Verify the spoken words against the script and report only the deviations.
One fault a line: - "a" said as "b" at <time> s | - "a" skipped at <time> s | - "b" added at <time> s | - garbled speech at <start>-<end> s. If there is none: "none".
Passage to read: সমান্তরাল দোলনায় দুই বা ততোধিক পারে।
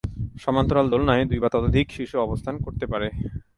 - "শিশু অবস্থান করতে" added at 2.0 s